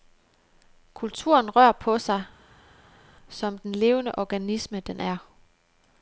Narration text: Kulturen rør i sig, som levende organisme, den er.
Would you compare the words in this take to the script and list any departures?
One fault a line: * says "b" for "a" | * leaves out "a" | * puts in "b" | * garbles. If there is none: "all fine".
* says "på" for "i"
* puts in "den"